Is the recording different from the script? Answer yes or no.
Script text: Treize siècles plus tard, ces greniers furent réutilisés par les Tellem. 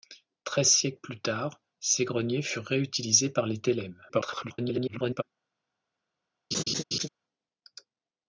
yes